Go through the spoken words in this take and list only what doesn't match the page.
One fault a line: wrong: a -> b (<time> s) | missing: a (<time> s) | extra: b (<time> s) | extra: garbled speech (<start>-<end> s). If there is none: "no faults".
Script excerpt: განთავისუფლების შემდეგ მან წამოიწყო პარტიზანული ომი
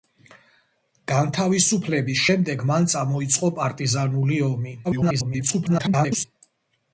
extra: garbled speech (4.8-6.2 s)